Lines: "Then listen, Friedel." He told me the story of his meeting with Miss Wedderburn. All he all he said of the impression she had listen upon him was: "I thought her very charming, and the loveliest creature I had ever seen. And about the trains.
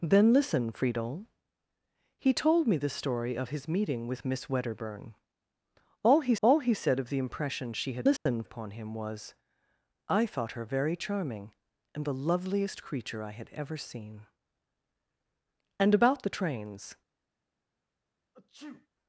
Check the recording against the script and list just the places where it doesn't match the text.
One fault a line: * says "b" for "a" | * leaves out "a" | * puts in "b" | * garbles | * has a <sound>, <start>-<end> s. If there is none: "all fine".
* has a dropout, 8.2-8.3 s
* has a sneeze, 18.3-18.9 s